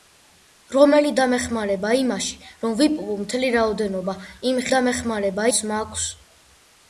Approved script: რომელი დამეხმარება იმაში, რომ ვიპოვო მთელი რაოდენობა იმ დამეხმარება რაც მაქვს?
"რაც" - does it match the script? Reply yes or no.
yes